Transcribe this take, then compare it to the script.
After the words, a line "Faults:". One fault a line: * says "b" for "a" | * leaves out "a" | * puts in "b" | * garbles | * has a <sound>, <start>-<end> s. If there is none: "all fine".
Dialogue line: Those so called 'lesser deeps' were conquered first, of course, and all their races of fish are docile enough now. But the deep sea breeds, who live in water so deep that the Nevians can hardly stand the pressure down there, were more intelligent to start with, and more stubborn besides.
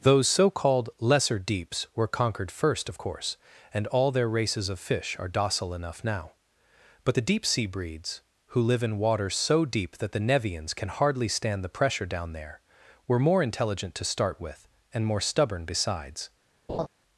Those so called 'lesser deeps' were conquered first, of course, and all their races of fish are docile enough now. But the deep sea breeds, who live in water so deep that the Nevians can hardly stand the pressure down there, were more intelligent to start with, and more stubborn besides.
Faults:
* has a laugh, 16.7-16.9 s